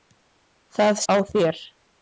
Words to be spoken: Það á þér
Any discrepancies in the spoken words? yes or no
no